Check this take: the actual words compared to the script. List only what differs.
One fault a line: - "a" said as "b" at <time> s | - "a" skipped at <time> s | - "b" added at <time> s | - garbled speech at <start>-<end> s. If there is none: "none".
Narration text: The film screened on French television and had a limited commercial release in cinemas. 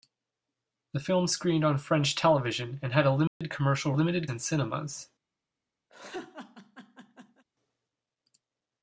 - "release" said as "limited" at 3.9 s